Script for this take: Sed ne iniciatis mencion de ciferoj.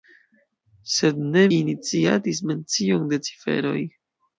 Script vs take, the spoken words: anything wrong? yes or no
no